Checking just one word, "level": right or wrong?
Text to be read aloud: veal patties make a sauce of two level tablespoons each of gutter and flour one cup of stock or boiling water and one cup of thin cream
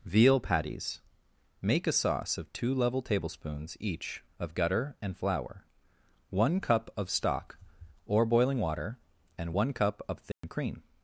right